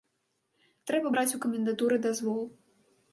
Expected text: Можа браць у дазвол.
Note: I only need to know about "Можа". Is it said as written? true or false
false